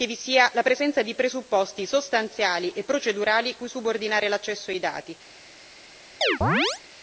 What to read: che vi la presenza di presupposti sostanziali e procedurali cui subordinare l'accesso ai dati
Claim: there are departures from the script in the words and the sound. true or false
true